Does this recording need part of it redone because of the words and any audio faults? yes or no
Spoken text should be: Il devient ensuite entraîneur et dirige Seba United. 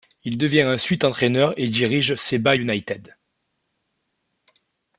no